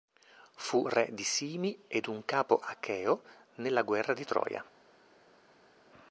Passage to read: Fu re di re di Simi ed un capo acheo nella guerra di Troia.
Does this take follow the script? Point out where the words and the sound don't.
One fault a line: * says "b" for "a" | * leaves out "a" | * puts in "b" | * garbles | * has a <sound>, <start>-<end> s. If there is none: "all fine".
* leaves out "re di"